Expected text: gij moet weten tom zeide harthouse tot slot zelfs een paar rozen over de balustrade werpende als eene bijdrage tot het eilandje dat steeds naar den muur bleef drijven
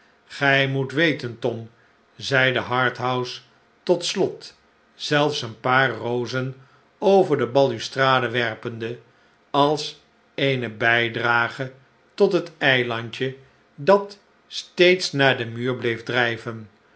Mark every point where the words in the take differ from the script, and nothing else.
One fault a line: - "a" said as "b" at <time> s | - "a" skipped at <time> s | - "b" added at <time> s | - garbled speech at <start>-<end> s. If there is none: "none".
none